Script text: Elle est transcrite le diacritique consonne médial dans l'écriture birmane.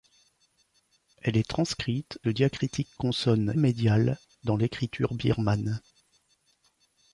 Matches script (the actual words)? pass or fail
pass